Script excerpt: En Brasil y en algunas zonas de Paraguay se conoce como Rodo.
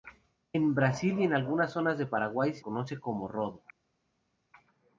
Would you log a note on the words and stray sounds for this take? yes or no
no